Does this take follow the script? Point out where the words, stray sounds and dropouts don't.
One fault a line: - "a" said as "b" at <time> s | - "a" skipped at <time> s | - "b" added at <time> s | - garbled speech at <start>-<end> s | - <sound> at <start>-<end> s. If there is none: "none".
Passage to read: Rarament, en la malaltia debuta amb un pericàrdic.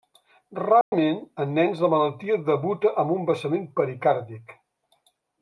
- dropout at 0.8-0.9 s
- "nens" added at 1.6 s
- "vessament" added at 3.3 s